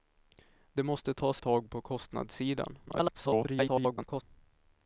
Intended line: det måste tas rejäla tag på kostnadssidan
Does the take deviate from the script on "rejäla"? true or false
true